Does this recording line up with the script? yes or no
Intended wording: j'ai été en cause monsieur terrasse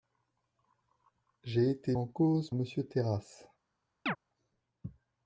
yes